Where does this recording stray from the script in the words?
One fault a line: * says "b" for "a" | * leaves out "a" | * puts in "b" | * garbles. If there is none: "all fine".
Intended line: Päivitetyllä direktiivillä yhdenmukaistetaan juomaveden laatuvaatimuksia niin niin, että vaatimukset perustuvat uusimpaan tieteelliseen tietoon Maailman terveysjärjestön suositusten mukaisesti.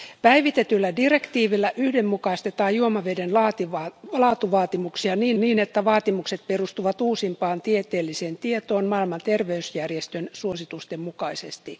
all fine